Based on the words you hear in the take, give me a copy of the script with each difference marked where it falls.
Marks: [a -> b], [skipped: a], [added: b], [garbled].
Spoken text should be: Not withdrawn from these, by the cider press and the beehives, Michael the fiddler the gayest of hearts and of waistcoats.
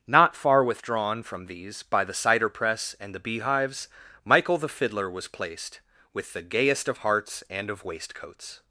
Not [added: far] withdrawn from these, by the cider press and the beehives, Michael the fiddler [added: was placed with] the gayest of hearts and of waistcoats.